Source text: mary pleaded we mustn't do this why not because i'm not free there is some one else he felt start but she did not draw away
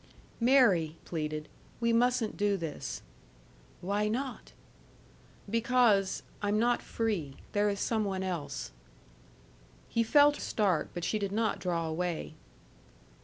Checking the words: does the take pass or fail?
pass